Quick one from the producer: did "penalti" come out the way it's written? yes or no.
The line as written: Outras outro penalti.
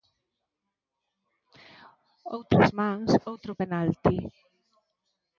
yes